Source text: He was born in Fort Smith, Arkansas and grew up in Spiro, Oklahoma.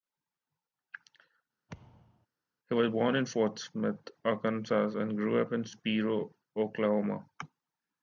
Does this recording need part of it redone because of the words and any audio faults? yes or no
yes